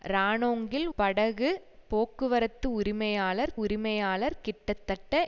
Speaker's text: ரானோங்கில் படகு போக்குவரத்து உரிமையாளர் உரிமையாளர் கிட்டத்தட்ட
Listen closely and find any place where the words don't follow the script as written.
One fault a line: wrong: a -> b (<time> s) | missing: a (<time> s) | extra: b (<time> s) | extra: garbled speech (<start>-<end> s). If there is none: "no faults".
no faults